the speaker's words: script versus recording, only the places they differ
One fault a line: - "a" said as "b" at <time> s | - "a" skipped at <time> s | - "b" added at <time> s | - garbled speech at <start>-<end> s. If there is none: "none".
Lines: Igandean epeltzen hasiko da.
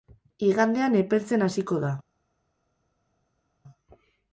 none